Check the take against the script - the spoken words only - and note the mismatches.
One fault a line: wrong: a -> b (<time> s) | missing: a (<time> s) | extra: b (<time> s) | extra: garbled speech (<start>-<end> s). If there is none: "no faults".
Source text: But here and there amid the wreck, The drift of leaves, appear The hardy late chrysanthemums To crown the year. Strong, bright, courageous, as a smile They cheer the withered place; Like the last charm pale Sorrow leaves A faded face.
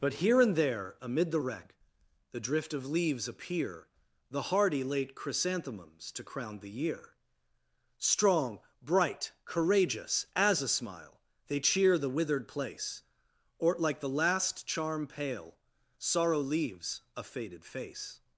extra: or (13.6 s)